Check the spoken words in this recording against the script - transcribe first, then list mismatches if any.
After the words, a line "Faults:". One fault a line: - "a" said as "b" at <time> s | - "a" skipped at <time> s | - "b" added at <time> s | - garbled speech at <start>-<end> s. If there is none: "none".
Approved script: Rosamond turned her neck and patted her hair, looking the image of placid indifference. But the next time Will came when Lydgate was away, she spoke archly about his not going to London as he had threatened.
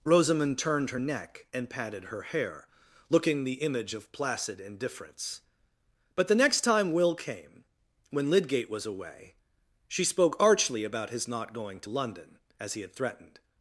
Rosamond turned her neck and patted her hair, looking the image of placid indifference. But the next time Will came when Lydgate was away, she spoke archly about his not going to London as he had threatened.
Faults:
none